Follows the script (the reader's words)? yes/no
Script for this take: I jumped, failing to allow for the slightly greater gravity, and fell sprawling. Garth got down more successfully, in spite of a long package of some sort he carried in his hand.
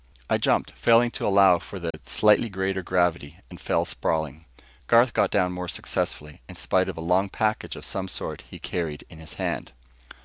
yes